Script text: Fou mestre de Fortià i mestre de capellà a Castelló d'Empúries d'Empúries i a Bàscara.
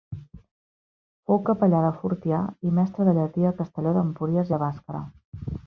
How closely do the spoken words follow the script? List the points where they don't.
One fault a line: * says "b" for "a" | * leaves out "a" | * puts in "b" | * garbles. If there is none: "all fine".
* says "capellà" for "mestre"
* says "llatí" for "capellà"
* leaves out "d'Empúries"